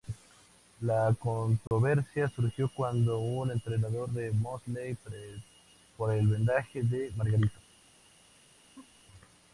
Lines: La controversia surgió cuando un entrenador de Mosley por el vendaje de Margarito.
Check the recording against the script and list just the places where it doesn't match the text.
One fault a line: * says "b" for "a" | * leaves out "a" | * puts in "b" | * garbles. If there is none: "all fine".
all fine